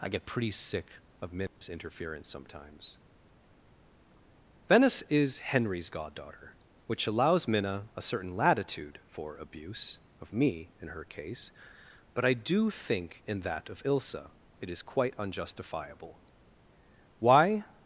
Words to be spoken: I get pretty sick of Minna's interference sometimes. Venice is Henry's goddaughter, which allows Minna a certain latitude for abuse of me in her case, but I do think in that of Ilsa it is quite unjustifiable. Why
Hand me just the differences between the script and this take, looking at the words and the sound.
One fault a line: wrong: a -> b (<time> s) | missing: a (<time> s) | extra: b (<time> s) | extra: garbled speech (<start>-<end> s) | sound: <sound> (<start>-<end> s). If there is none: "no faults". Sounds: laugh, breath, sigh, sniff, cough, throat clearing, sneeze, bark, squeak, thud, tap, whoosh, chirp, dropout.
sound: dropout (1.5-1.6 s)